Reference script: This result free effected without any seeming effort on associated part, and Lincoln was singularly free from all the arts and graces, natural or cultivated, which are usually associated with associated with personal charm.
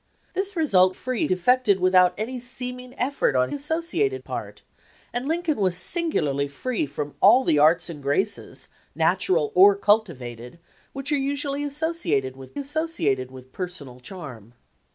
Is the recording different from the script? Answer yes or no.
no